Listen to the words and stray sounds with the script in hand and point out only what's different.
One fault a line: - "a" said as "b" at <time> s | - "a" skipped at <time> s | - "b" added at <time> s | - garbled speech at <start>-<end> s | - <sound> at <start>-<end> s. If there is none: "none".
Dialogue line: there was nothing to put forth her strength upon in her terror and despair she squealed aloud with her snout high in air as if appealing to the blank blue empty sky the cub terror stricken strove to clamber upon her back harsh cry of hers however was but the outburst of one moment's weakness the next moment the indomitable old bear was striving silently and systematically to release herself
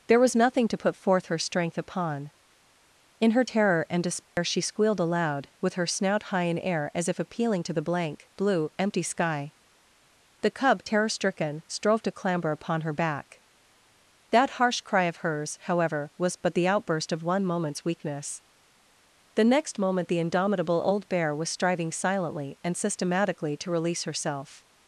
- dropout at 4.2-4.4 s
- "that" added at 14.3 s